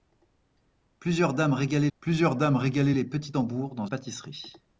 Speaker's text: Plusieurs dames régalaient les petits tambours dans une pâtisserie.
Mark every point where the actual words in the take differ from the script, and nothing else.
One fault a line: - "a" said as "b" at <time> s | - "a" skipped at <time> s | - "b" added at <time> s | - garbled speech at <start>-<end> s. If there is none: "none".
- "plusieurs dames régalaient" added at 2.0 s
- "une" skipped at 3.9 s